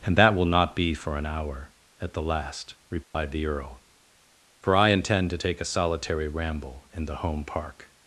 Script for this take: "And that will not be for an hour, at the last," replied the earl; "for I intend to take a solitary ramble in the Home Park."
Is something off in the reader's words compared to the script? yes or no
no